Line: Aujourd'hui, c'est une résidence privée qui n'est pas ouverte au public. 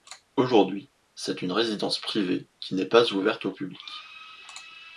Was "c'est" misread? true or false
false